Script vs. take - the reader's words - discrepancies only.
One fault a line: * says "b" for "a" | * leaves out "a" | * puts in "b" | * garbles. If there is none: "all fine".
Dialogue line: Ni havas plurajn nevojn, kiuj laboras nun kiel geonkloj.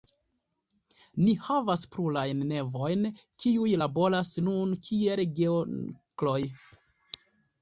all fine